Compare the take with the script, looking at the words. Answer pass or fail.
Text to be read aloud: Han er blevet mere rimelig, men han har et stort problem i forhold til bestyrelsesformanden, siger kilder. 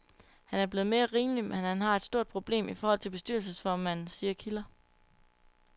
pass